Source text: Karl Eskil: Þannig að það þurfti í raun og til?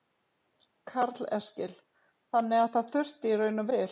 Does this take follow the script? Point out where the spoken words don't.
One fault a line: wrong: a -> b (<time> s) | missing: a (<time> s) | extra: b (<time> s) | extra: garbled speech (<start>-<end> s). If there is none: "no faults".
no faults